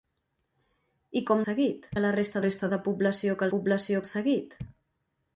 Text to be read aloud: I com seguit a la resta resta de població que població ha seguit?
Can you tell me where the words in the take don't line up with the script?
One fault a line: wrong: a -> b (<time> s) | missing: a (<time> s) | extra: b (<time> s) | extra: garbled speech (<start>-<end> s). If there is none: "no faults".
no faults